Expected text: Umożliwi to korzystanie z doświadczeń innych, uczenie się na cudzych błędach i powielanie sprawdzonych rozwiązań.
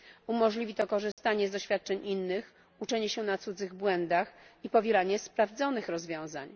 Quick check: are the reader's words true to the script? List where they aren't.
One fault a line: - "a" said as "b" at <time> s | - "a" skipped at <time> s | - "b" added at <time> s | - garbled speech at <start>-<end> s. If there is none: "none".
none